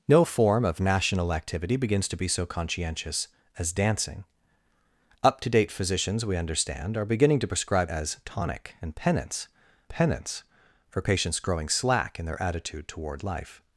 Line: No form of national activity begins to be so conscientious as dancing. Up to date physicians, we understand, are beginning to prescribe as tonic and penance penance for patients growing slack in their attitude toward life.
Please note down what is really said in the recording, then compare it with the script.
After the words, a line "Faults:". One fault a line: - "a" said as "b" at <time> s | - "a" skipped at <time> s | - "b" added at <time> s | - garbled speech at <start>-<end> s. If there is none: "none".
No form of national activity begins to be so conscientious as dancing. Up to date physicians, we understand, are beginning to prescribe as tonic and penance penance for patients growing slack in their attitude toward life.
Faults:
none